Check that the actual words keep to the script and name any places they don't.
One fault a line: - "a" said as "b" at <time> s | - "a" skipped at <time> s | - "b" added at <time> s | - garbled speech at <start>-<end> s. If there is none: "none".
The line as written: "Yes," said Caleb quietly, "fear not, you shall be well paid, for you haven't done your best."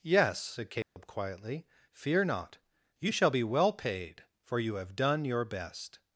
- "haven't" said as "have" at 4.7 s